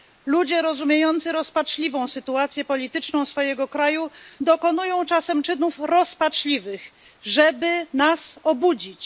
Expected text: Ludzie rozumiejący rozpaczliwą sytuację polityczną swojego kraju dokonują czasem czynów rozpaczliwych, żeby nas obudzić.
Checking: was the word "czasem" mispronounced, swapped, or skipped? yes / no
no